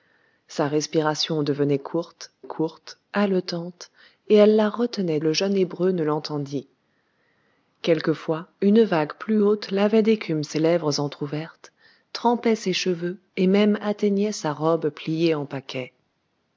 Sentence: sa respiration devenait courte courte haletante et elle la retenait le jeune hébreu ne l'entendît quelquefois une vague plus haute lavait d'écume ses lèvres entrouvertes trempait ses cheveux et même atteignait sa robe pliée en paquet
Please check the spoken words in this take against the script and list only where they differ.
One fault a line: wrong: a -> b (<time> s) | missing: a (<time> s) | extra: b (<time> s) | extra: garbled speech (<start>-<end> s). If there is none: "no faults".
no faults